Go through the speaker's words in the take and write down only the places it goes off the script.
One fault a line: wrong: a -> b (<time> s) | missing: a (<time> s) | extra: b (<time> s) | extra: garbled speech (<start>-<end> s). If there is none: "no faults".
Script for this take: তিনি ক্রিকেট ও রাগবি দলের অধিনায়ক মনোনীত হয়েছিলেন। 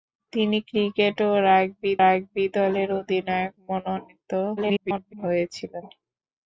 extra: রাগবি (2.0 s)
extra: garbled speech (4.6-5.1 s)